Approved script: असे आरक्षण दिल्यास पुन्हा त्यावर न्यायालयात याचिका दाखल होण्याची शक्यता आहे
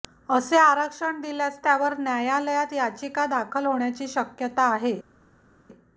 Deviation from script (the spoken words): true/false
true